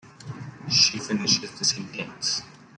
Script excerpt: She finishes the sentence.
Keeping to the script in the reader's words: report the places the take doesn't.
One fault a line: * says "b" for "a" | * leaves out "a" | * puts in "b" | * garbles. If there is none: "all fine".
all fine